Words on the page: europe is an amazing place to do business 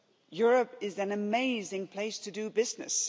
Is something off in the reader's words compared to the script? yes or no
no